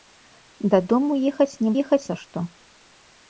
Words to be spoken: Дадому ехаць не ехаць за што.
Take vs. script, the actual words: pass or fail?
pass